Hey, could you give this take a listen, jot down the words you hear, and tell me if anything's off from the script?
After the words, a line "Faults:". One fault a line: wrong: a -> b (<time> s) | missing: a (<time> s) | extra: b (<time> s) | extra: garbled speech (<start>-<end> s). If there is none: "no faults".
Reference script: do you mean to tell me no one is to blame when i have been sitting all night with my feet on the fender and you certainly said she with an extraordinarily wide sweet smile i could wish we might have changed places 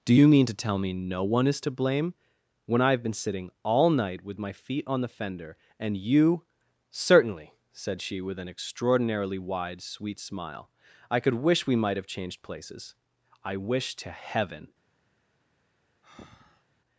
do you mean to tell me no one is to blame when i have been sitting all night with my feet on the fender and you certainly said she with an extraordinarily wide sweet smile i could wish we might have changed places i wish to heaven
Faults:
extra: i wish to heaven (13.4 s)